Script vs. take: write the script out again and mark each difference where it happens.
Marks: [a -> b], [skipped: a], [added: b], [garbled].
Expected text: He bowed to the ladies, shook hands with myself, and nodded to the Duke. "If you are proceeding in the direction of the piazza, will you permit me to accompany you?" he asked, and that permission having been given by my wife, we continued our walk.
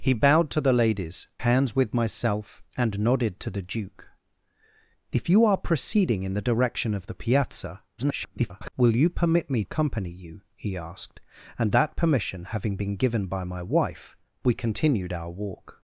He bowed to the ladies, [skipped: shook] hands with myself, and nodded to the Duke. "If you are proceeding in the direction of the piazza, [garbled] will you permit me [skipped: to] accompany you?" he asked, and that permission having been given by my wife, we continued our walk.